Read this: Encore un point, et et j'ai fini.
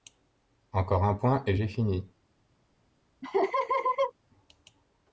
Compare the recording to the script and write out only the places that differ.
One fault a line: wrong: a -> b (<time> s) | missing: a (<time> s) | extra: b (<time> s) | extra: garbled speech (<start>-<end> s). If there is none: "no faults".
missing: et (1.6 s)